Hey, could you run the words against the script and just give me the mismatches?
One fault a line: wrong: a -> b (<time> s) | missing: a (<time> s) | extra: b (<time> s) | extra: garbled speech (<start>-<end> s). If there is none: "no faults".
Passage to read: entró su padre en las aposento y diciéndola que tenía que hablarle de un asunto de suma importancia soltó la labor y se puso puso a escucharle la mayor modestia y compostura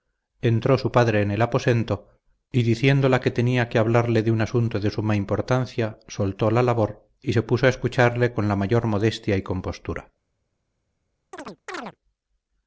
wrong: las -> el (1.3 s)
missing: puso (7.7 s)
extra: con (8.3 s)